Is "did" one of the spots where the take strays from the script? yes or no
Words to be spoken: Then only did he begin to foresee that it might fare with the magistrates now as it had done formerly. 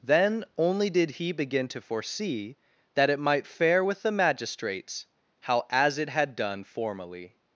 no